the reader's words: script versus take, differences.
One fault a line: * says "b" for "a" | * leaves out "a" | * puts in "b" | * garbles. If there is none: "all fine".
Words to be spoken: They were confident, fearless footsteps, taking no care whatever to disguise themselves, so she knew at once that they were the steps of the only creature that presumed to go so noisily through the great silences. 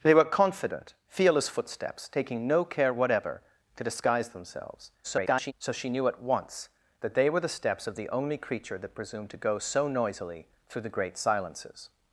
* garbles